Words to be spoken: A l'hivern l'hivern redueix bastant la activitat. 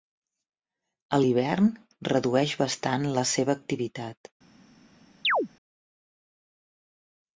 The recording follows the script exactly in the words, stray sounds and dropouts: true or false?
false